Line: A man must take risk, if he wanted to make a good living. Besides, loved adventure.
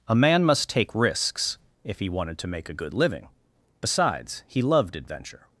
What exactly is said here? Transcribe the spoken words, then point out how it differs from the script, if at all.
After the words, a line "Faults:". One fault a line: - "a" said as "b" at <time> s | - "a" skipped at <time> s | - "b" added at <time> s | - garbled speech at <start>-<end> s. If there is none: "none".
A man must take risks, if he wanted to make a good living. Besides, he loved adventure.
Faults:
- "risk" said as "risks" at 0.9 s
- "he" added at 4.5 s